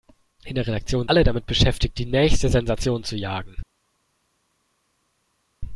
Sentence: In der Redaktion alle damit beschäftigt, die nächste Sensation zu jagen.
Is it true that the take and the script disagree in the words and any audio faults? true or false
false